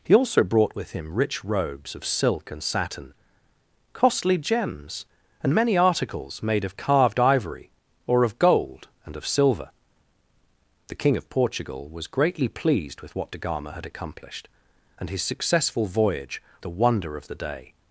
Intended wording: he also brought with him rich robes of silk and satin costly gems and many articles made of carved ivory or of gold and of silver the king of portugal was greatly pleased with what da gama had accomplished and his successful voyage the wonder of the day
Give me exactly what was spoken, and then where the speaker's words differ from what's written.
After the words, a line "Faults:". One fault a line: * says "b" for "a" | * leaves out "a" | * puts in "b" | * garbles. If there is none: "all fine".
he also brought with him rich robes of silk and satin costly gems and many articles made of carved ivory or of gold and of silver the king of portugal was greatly pleased with what da gama had accomplished and his successful voyage the wonder of the day
Faults:
all fine